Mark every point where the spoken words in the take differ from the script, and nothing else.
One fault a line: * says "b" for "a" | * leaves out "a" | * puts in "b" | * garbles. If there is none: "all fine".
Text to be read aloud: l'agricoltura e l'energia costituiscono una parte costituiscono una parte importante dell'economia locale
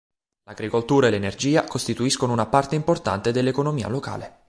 * leaves out "costituiscono una parte"